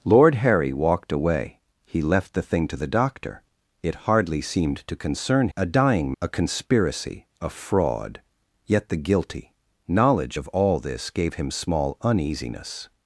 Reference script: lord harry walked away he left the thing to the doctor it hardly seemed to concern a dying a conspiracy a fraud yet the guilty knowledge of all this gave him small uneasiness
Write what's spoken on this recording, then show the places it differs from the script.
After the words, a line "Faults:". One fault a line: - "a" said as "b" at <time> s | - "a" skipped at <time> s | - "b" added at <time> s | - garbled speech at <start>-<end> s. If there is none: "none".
lord harry walked away he left the thing to the doctor it hardly seemed to concern a dying a conspiracy a fraud yet the guilty knowledge of all this gave him small uneasiness
Faults:
none